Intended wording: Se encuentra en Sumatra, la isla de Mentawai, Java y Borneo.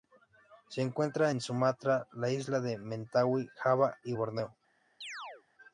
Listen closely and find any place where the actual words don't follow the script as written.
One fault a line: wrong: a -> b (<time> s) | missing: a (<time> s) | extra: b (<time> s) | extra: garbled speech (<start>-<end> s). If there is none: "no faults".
no faults